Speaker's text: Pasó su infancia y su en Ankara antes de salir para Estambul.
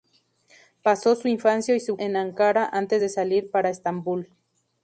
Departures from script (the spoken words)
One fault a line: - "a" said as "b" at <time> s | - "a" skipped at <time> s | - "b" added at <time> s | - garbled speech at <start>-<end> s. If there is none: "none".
none